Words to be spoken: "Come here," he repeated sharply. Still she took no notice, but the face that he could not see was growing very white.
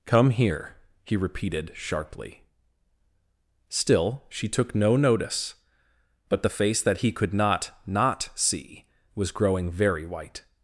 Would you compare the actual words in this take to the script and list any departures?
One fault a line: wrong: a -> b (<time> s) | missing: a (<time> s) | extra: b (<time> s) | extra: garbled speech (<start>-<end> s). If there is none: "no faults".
extra: not (7.9 s)